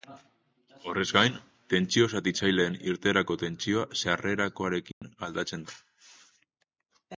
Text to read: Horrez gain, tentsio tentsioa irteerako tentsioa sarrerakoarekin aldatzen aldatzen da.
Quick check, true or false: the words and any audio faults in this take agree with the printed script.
false